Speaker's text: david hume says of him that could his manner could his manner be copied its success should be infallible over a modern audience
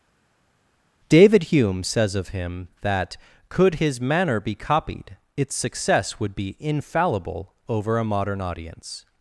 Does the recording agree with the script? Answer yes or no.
no